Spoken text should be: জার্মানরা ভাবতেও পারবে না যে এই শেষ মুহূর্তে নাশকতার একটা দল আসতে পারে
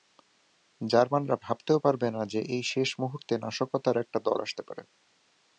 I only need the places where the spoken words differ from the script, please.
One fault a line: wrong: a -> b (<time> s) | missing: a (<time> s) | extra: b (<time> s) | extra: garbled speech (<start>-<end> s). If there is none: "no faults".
no faults